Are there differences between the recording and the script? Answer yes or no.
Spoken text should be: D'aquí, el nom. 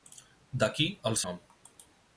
no